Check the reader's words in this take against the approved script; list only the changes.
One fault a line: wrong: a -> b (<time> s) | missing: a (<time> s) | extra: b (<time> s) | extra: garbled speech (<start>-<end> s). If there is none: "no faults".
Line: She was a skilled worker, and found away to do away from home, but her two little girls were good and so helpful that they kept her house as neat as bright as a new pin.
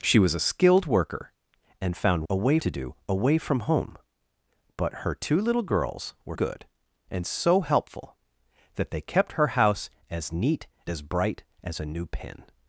no faults